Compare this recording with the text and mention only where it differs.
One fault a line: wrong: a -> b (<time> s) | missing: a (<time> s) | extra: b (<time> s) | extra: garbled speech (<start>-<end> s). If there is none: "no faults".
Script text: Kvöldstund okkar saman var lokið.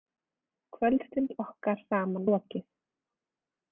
missing: var (2.3 s)